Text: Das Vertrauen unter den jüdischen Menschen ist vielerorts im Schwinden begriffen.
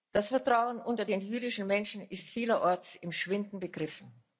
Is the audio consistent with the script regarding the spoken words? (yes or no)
yes